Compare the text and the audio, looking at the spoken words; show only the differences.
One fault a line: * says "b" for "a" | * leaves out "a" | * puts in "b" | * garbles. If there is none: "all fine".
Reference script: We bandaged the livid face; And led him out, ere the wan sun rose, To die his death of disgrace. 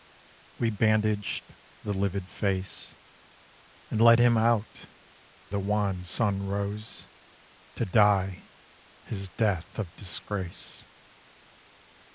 * leaves out "ere"